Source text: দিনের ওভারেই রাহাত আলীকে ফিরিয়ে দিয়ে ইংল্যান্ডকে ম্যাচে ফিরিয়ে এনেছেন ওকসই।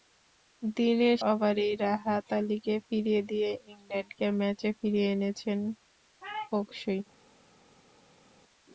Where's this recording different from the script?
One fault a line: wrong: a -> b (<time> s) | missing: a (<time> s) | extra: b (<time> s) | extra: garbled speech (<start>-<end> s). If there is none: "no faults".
no faults